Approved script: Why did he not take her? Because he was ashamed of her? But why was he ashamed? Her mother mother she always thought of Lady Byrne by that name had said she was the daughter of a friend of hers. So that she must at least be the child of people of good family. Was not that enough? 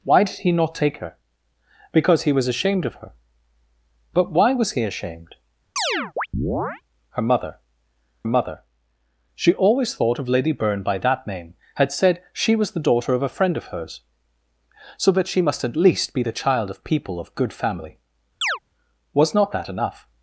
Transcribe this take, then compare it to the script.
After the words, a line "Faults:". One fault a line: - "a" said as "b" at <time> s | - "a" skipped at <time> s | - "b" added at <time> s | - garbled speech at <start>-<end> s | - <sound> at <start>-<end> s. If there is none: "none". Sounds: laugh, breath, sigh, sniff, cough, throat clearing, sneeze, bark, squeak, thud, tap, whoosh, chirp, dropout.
Why did he not take her? Because he was ashamed of her? But why was he ashamed? Her mother mother she always thought of Lady Byrne by that name had said she was the daughter of a friend of hers. So that she must at least be the child of people of good family. Was not that enough?
Faults:
- chirp at 5.8-6.8 s
- chirp at 18.4-18.6 s